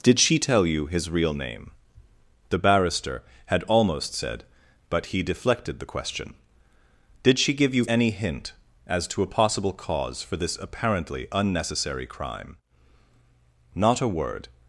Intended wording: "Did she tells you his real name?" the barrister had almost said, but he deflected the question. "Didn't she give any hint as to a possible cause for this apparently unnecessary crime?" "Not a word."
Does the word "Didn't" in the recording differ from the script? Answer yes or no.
yes